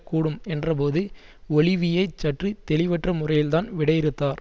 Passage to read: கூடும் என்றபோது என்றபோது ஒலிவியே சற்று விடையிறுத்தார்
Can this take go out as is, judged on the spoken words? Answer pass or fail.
fail